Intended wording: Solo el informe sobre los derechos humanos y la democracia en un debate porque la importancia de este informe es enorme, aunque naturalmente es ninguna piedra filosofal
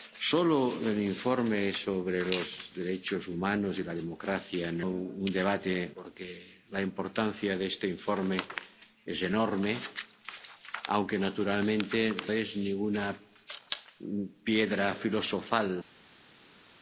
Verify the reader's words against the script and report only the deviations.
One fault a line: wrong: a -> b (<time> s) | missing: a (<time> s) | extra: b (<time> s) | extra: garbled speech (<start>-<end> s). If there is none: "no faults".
no faults